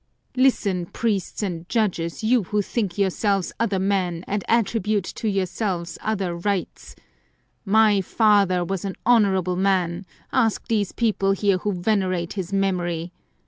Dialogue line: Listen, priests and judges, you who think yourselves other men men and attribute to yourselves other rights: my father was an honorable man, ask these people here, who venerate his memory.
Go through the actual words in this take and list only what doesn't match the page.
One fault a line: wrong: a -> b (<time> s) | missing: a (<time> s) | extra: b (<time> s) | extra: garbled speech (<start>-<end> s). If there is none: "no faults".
missing: men (4.2 s)